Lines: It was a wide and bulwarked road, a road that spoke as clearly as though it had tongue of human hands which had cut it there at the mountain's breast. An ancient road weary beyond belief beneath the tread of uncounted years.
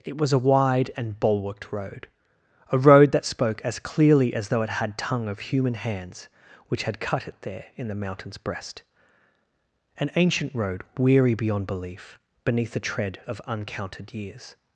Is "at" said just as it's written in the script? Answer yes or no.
no